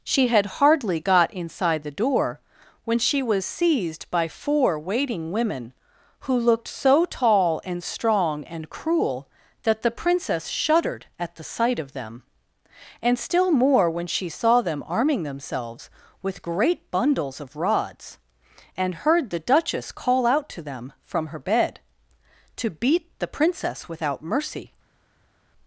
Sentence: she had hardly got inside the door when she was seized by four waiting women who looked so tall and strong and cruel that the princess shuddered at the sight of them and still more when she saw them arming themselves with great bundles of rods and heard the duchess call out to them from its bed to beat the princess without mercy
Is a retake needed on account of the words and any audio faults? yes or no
yes